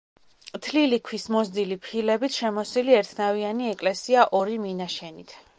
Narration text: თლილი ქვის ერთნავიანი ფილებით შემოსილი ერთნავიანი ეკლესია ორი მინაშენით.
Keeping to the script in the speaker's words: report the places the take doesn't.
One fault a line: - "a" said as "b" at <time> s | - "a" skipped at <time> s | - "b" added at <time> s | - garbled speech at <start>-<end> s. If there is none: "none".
- "ერთნავიანი" said as "მოზრდილი" at 1.4 s